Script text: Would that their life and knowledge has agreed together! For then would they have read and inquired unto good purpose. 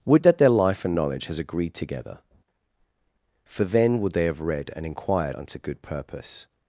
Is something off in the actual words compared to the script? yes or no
no